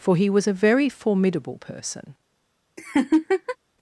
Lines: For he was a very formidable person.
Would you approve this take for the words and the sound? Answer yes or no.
no